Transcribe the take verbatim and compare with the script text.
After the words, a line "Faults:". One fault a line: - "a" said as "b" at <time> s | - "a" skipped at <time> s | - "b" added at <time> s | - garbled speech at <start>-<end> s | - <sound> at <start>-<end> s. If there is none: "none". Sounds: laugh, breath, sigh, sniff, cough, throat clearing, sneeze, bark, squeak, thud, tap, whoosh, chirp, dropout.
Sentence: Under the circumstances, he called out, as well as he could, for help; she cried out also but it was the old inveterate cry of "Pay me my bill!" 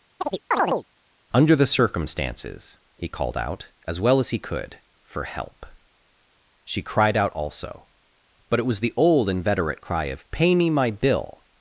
Under the circumstances, he called out, as well as he could, for help; she cried out also but it was the old inveterate cry of "Pay me my bill!"
Faults:
- chirp at 0.2-0.9 s